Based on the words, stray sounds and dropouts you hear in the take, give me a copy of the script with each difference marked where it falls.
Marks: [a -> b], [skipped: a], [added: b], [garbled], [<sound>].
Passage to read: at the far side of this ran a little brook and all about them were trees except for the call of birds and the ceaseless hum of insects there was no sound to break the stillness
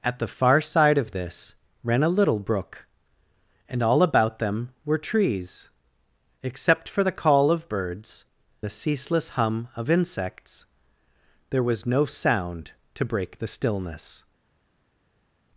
at the far side of this ran a little brook and all about them were trees except for the call of birds [skipped: and] the ceaseless hum of insects there was no sound to break the stillness